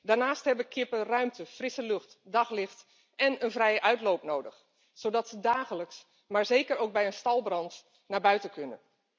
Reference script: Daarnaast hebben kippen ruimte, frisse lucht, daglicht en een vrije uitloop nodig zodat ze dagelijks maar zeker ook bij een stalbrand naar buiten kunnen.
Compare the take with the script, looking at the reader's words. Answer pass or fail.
pass